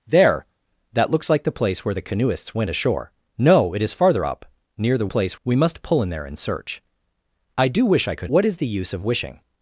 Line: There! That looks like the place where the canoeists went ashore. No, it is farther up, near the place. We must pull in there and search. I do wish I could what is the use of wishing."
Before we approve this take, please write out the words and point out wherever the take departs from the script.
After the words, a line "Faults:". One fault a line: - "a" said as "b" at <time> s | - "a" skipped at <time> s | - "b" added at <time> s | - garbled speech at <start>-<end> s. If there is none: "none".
There! That looks like the place where the canoeists went ashore. No, it is farther up, near the place. We must pull in there and search. I do wish I could what is the use of wishing."
Faults:
none